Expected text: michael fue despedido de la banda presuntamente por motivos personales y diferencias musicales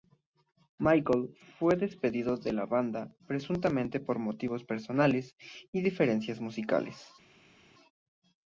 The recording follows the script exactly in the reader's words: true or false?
true